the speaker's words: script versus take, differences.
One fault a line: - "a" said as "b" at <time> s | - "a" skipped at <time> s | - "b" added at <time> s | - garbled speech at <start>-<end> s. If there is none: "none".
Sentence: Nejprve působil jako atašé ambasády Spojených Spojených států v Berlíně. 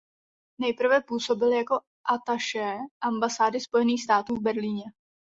- "Spojených" skipped at 4.0 s